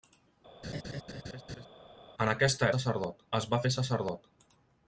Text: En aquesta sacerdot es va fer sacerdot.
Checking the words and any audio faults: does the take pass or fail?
fail